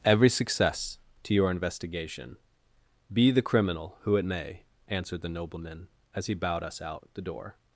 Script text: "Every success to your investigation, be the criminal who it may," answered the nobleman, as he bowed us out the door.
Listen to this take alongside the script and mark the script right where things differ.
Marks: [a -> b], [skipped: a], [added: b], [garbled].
"Every success to your investigation, be the criminal who it may," answered the nobleman, as he bowed us out the door.